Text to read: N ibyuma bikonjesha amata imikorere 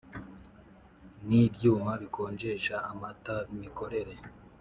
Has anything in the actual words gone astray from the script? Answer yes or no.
no